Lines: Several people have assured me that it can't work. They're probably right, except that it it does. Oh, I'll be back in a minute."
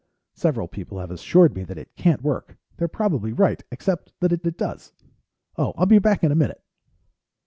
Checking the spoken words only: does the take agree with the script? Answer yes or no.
yes